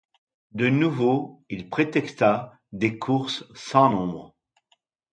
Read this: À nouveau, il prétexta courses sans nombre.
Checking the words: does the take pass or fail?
fail